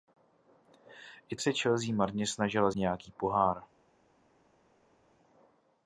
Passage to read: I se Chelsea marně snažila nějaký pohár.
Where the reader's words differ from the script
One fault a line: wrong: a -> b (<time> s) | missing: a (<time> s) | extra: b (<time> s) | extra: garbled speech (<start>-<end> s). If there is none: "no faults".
no faults